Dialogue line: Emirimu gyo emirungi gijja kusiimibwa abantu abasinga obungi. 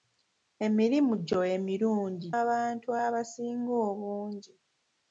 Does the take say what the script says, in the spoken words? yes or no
no